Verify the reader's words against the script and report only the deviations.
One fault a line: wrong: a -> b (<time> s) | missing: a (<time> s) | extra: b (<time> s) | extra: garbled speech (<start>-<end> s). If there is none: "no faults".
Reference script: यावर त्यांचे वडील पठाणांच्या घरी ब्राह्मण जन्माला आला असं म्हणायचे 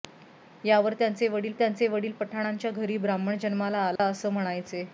extra: त्यांचे वडील (1.5 s)